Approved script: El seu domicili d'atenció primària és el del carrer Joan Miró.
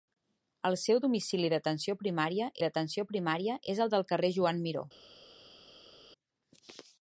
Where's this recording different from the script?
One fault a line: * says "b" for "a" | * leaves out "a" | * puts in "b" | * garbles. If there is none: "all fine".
* puts in "d'atenció primària"